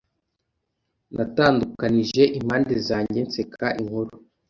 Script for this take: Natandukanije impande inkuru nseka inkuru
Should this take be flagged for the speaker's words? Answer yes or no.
yes